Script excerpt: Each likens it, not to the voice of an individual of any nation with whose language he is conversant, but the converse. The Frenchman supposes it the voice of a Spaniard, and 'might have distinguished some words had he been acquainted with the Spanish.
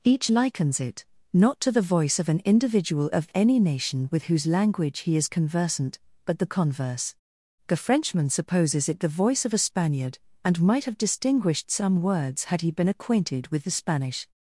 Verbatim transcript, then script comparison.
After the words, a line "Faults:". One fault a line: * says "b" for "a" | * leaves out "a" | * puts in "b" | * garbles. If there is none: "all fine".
Each likens it, not to the voice of an individual of any nation with whose language he is conversant, but the converse. The Frenchman supposes it the voice of a Spaniard, and 'might have distinguished some words had he been acquainted with the Spanish.
Faults:
all fine